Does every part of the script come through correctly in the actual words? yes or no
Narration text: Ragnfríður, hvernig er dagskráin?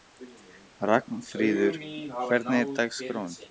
yes